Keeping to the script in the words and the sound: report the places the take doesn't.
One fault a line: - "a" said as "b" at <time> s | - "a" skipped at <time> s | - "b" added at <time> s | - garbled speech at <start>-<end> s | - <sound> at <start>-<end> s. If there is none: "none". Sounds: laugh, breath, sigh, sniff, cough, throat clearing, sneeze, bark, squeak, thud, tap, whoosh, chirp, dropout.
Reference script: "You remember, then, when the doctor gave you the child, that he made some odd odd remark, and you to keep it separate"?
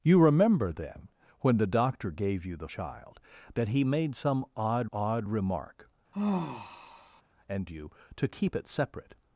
- sigh at 6.1-7.2 s